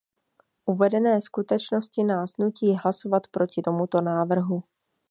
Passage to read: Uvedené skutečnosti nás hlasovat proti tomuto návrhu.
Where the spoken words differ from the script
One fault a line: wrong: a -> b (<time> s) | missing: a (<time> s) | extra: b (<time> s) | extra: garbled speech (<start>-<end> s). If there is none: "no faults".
extra: nutí (2.4 s)